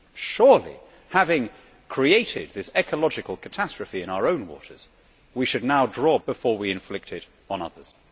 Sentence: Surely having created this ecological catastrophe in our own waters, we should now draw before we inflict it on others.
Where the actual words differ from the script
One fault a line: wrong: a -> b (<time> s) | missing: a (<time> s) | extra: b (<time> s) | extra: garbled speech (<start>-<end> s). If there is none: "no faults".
no faults